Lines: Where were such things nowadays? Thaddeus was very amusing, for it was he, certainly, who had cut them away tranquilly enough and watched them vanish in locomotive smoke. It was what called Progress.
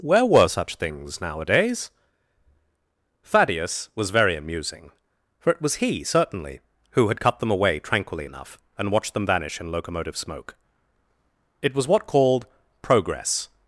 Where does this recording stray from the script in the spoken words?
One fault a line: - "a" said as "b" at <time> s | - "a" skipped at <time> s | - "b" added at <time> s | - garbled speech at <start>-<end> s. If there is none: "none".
none